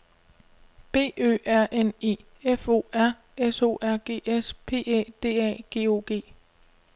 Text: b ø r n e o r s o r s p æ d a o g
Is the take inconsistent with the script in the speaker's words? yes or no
yes